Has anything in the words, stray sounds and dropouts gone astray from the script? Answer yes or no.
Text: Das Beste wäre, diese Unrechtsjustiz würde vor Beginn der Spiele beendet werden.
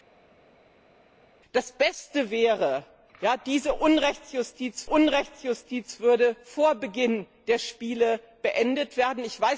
yes